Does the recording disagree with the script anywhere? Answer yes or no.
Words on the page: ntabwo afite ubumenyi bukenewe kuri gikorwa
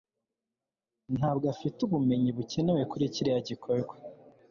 yes